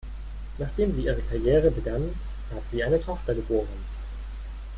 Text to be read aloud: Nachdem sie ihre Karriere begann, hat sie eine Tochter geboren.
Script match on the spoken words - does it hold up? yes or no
yes